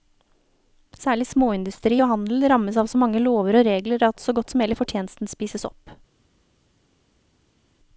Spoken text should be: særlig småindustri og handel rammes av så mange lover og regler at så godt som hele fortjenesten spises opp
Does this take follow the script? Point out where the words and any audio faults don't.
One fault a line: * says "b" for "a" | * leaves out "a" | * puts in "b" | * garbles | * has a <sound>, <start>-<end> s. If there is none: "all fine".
all fine